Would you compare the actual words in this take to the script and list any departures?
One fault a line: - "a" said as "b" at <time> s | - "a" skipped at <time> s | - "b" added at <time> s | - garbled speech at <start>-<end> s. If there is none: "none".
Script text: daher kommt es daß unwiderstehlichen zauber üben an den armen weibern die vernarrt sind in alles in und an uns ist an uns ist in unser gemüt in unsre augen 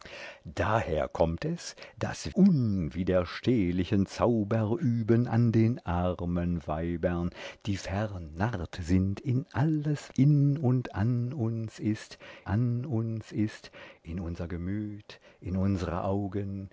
none